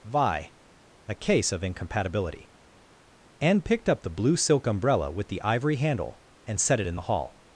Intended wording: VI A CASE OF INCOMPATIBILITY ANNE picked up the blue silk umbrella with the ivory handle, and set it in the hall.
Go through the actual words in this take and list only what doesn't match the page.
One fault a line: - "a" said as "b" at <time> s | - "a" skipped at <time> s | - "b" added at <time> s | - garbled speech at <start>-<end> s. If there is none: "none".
none